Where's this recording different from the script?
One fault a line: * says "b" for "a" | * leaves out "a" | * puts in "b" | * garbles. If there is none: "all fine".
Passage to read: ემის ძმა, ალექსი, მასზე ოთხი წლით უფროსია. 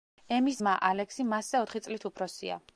all fine